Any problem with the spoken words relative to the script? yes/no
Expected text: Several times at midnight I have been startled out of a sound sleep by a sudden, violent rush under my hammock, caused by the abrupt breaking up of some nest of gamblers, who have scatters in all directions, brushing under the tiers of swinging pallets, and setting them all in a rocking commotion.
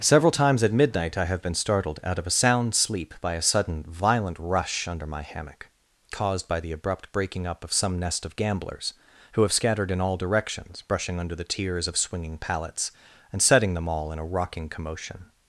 yes